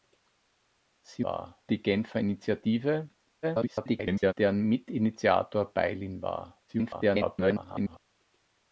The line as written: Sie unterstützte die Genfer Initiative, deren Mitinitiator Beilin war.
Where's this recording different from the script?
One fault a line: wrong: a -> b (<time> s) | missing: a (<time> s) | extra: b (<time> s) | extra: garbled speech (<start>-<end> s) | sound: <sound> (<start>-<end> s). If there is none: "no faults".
wrong: unterstützte -> war (1.2 s)
extra: garbled speech (3.4-4.3 s)
extra: garbled speech (6.7-8.0 s)